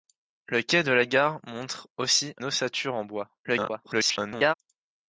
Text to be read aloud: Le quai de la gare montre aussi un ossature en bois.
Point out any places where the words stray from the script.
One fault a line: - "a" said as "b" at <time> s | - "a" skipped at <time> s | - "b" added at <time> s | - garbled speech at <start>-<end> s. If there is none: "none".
- "un" skipped at 2.3 s
- garbled speech at 3.4-4.5 s